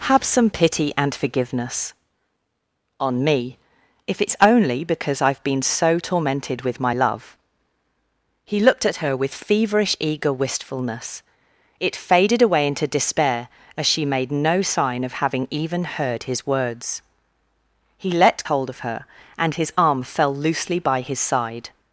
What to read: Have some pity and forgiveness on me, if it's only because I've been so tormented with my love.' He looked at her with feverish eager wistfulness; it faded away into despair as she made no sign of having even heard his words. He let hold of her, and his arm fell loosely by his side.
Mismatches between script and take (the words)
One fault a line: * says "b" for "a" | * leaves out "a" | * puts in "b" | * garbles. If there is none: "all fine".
all fine